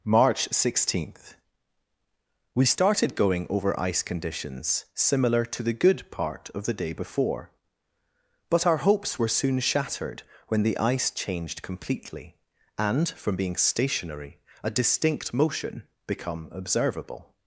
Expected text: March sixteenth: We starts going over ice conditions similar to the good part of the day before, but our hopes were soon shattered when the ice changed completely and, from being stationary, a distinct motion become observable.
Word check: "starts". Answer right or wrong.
wrong